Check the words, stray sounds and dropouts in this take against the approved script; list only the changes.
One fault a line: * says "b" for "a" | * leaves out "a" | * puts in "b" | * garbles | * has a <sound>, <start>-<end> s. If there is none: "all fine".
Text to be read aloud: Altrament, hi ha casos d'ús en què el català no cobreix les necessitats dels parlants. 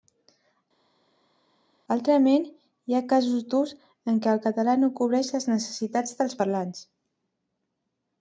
all fine